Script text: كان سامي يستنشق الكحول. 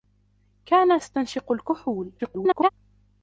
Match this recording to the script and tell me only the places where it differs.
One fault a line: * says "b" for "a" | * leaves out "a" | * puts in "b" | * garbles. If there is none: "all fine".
* leaves out "سامي"
* garbles